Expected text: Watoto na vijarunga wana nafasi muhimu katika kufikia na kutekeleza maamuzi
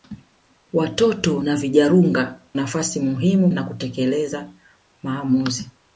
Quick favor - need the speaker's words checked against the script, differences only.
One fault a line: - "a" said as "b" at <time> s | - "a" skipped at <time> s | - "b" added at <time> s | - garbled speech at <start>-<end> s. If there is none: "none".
- "wana" skipped at 2.4 s
- "katika kufikia" skipped at 3.5 s